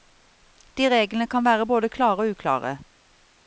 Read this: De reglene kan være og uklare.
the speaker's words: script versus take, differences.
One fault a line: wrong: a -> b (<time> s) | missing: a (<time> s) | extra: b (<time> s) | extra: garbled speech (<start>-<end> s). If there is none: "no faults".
extra: både klare (1.7 s)